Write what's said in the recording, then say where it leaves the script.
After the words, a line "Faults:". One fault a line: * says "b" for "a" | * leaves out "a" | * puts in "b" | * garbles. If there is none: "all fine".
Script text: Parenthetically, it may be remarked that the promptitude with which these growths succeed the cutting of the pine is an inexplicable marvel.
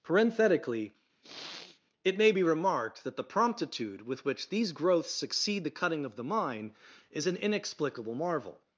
Parenthetically, it may be remarked that the promptitude with which these growths succeed the cutting of the mine is an inexplicable marvel.
Faults:
* says "mine" for "pine"